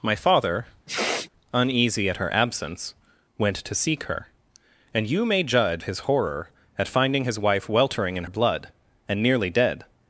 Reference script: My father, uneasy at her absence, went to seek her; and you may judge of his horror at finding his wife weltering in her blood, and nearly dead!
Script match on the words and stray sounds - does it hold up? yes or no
no